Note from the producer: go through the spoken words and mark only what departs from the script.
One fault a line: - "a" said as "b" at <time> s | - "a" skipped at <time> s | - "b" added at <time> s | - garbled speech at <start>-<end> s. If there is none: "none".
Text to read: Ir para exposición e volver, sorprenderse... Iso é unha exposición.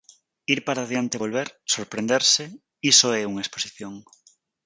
- "exposición" said as "adiante" at 0.8 s